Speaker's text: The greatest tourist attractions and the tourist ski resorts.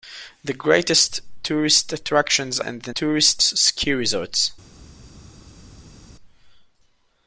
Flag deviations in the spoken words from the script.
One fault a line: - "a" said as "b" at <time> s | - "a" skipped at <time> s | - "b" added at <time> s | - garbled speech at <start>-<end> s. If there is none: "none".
none